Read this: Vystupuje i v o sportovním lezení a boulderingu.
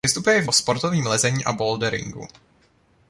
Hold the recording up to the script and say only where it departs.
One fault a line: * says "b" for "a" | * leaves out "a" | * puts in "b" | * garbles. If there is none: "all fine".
all fine